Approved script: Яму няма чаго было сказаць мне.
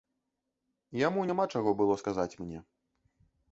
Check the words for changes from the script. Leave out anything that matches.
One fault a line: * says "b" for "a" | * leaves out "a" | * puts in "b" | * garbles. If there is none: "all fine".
all fine